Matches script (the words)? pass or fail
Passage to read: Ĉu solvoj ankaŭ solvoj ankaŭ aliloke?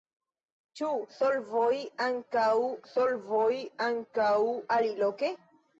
pass